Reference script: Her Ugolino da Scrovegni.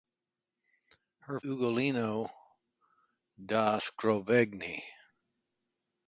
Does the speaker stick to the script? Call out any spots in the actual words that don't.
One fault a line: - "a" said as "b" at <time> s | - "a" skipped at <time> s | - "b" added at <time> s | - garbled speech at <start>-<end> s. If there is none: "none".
none